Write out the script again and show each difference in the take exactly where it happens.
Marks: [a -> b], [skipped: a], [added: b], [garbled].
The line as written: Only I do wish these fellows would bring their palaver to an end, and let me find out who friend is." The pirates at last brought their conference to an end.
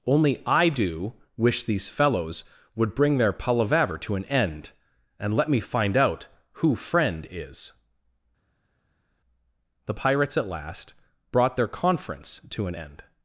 Only I do wish these fellows would bring their palaver to an end, and let me find out who friend is." The pirates at last brought their conference to an end.